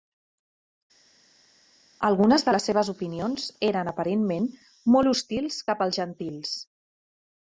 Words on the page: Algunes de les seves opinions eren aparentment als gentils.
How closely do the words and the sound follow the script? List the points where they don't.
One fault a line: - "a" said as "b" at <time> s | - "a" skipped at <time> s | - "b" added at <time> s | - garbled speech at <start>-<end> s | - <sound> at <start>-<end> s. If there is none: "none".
- "molt hostils cap" added at 5.0 s